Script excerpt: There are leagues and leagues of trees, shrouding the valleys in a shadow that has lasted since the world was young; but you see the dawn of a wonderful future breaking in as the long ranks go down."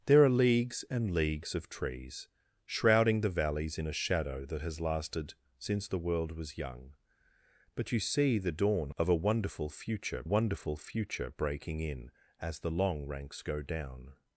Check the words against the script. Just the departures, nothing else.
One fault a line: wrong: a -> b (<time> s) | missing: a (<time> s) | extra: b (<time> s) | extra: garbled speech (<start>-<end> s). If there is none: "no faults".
extra: wonderful future (10.2 s)